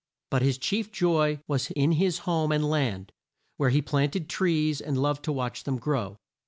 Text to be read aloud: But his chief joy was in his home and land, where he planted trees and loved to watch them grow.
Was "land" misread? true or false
false